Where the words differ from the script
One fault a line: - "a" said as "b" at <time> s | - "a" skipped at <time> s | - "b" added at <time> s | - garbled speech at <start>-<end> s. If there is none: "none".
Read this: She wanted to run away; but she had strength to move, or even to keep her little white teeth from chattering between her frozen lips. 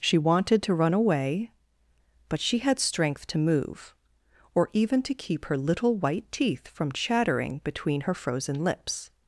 none